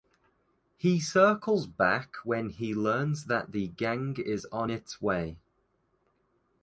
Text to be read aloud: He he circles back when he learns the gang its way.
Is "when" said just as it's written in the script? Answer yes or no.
yes